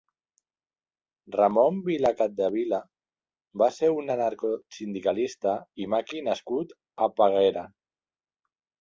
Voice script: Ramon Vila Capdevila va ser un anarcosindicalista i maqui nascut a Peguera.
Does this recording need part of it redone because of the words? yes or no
no